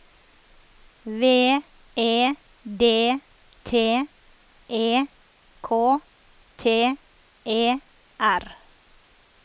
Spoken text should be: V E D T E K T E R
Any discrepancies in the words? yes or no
no